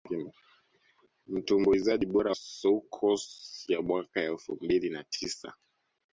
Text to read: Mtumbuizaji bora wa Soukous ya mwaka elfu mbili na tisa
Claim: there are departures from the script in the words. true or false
true